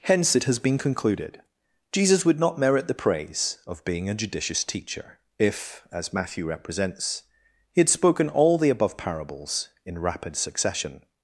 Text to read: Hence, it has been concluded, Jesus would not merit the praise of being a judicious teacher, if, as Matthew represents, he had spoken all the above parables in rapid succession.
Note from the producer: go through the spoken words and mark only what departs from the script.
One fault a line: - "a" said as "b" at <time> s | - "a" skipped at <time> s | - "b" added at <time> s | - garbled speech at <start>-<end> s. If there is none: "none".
none